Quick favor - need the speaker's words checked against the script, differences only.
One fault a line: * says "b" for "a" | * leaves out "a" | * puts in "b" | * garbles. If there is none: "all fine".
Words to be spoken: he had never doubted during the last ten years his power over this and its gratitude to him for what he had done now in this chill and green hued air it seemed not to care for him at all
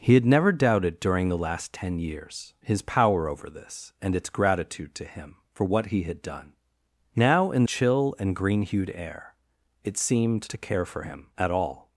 * leaves out "this"
* leaves out "not"